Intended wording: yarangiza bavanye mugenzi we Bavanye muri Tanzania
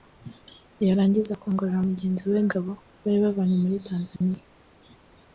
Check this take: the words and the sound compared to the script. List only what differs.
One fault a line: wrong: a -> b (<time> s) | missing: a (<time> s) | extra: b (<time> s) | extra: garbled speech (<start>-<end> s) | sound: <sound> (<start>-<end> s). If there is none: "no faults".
wrong: bavanye -> akongorera (1.3 s)
extra: Gabo bari (2.5 s)
sound: dropout (4.2-4.2 s)